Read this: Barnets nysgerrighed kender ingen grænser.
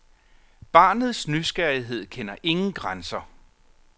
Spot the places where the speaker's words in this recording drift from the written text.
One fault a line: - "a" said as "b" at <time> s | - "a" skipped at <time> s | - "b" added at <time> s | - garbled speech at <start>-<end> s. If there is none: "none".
none